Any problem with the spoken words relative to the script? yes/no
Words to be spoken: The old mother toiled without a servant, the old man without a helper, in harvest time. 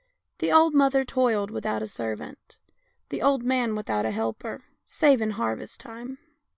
yes